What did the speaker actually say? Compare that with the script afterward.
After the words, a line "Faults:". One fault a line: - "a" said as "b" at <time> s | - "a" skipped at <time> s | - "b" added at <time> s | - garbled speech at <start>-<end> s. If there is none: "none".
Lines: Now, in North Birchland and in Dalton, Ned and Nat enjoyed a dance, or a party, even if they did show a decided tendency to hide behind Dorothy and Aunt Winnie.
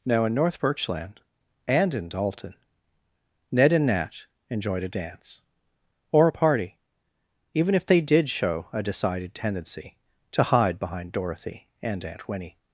Now, in North Birchland and in Dalton, Ned and Nat enjoyed a dance, or a party, even if they did show a decided tendency to hide behind Dorothy and Aunt Winnie.
Faults:
none